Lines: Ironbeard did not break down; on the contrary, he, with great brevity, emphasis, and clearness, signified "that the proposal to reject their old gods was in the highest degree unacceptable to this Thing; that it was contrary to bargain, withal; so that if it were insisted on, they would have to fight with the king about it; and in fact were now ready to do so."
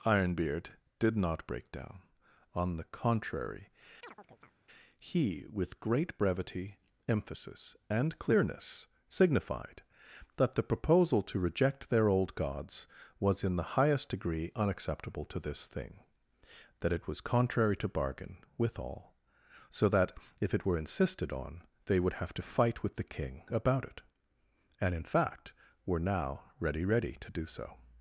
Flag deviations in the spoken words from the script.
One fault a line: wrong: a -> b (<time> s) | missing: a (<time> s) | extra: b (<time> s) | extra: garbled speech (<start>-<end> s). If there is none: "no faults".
extra: ready (26.8 s)